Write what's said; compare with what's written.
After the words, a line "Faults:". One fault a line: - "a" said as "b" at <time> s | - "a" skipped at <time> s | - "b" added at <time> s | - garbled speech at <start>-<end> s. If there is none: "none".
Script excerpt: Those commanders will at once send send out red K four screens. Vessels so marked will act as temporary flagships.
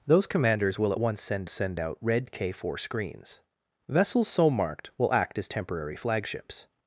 Those commanders will at once send send out red K four screens. Vessels so marked will act as temporary flagships.
Faults:
none